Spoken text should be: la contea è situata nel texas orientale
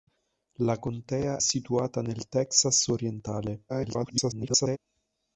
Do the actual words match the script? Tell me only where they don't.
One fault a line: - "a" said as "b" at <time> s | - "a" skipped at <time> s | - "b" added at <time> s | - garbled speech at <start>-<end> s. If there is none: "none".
- "è" skipped at 1.4 s
- garbled speech at 3.7-4.8 s